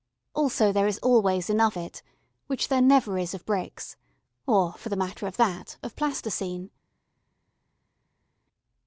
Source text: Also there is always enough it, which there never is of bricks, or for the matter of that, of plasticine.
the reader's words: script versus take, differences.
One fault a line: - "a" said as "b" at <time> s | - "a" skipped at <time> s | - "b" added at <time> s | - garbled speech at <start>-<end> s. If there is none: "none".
none